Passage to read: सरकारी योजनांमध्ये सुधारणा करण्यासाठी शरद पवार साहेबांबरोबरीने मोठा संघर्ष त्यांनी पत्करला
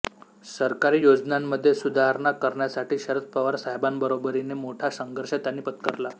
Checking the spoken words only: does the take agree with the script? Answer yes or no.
yes